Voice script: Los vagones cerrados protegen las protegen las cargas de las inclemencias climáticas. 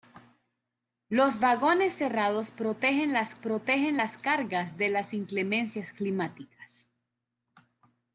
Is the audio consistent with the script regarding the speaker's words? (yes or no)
yes